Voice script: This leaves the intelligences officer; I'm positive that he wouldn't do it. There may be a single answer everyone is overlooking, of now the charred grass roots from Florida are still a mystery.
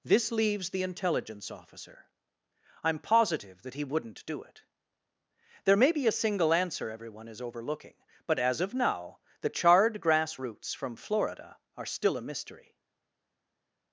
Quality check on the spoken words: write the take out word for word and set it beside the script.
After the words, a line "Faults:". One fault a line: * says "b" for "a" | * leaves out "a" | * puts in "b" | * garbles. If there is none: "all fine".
This leaves the intelligence officer; I'm positive that he wouldn't do it. There may be a single answer everyone is overlooking, but as of now the charred grass roots from Florida are still a mystery.
Faults:
* says "intelligence" for "intelligences"
* puts in "but as"